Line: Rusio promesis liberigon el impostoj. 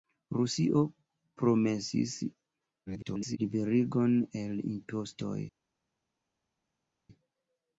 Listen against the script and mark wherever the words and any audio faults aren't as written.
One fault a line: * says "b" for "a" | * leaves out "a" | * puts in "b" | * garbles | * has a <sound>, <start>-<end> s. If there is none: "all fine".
* garbles